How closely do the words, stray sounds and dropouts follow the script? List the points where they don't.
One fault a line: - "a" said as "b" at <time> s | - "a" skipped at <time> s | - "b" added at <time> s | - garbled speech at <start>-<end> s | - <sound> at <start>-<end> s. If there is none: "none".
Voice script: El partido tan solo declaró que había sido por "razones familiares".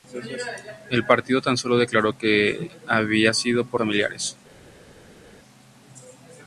- "razones" skipped at 3.8 s